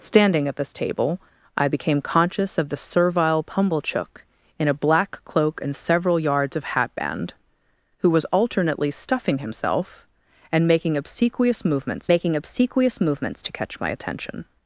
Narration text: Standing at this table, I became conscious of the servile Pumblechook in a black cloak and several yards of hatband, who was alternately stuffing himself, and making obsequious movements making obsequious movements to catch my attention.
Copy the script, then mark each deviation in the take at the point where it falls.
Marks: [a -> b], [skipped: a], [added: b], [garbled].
Standing at this table, I became conscious of the servile Pumblechook in a black cloak and several yards of hatband, who was alternately stuffing himself, and making obsequious movements making obsequious movements to catch my attention.